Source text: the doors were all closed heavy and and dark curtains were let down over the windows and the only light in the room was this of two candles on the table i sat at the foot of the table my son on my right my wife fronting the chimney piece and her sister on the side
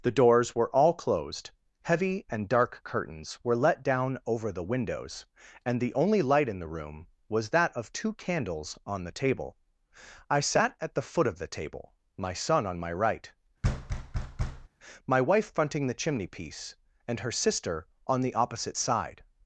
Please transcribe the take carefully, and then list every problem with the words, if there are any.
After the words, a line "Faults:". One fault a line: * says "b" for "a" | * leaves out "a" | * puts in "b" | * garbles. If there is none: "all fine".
the doors were all closed heavy and dark curtains were let down over the windows and the only light in the room was that of two candles on the table i sat at the foot of the table my son on my right my wife fronting the chimney piece and her sister on the opposite side
Faults:
* leaves out "and"
* says "that" for "this"
* puts in "opposite"